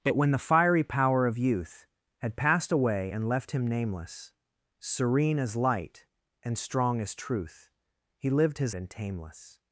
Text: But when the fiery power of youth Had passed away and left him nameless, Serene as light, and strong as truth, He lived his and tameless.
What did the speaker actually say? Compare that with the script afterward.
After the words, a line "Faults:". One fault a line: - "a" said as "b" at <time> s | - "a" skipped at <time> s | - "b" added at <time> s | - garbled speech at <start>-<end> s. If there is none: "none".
But when the fiery power of youth Had passed away and left him nameless, Serene as light, and strong as truth, He lived his and tameless.
Faults:
none